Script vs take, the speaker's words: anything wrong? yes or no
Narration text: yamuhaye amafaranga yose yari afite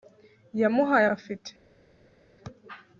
yes